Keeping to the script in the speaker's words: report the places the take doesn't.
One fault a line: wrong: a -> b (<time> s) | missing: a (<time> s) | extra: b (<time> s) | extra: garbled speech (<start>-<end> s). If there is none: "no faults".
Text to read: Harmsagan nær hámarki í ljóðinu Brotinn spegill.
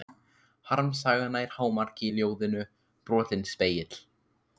no faults